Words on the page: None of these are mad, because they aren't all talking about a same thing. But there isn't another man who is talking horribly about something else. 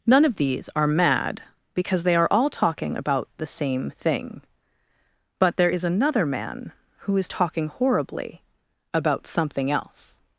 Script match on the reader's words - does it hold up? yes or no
no